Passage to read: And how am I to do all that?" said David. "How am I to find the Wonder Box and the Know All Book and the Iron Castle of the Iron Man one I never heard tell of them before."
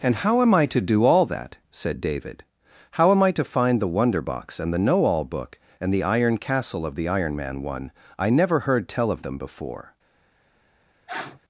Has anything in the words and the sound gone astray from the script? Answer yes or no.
yes